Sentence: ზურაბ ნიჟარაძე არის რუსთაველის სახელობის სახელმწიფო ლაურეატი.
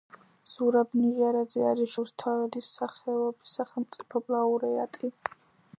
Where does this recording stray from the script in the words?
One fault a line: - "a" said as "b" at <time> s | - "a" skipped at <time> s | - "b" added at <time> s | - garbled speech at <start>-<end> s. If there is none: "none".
none